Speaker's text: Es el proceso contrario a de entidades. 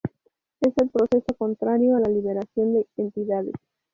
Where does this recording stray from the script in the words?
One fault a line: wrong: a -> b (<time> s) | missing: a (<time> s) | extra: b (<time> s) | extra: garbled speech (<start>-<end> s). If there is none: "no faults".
extra: la liberación (2.0 s)